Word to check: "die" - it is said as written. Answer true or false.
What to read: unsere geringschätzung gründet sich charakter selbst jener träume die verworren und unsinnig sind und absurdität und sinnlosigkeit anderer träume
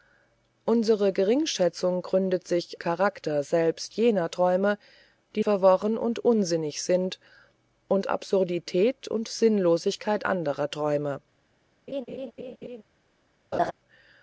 true